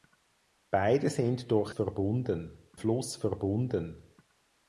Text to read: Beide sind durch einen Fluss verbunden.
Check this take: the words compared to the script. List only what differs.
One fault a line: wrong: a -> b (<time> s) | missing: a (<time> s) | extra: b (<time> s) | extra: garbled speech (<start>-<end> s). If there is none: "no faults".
wrong: einen -> verbunden (1.7 s)